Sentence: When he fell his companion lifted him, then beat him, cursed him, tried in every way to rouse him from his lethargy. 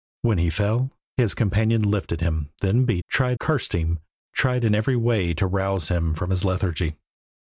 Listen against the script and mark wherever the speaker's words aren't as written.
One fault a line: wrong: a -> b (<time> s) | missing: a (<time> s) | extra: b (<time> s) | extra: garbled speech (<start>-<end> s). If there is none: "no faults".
wrong: him -> tried (3.1 s)